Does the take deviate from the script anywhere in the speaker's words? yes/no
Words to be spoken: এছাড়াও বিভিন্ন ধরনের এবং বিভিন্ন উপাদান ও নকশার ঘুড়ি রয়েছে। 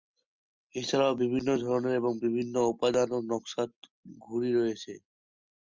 no